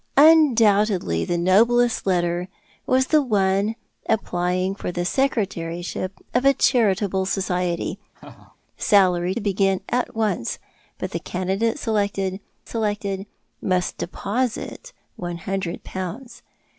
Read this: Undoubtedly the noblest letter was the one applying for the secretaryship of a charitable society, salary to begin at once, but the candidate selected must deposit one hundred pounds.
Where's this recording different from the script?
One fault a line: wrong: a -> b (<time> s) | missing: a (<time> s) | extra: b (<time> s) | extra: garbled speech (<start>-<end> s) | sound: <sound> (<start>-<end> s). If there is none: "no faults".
sound: laugh (8.1-8.6 s)
missing: to (9.3 s)
extra: selected (12.7 s)